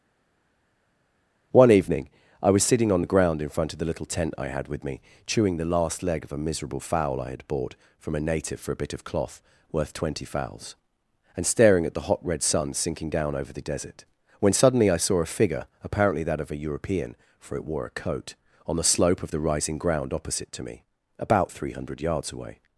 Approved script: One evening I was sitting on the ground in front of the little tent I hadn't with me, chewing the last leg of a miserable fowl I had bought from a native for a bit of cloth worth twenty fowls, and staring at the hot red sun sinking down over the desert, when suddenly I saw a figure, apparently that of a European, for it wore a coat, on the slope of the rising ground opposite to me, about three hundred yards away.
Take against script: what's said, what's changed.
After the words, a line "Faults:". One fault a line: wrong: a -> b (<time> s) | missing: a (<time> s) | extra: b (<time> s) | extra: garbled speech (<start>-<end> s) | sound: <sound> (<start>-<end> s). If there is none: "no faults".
One evening I was sitting on the ground in front of the little tent I had with me, chewing the last leg of a miserable fowl I had bought from a native for a bit of cloth worth twenty fowls, and staring at the hot red sun sinking down over the desert, when suddenly I saw a figure, apparently that of a European, for it wore a coat, on the slope of the rising ground opposite to me, about three hundred yards away.
Faults:
wrong: hadn't -> had (4.5 s)